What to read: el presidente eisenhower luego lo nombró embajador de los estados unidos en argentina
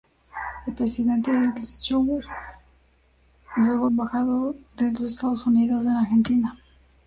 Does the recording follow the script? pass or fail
fail